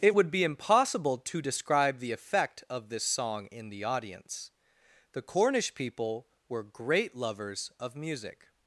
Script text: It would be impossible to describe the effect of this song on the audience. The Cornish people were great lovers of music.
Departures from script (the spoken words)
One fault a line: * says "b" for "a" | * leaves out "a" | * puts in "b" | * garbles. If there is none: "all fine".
* says "in" for "on"